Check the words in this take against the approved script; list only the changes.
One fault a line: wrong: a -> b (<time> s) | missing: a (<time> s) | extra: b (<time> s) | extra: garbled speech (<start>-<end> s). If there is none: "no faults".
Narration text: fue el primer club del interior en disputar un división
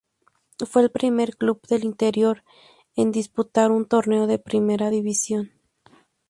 extra: torneo de primera (3.9 s)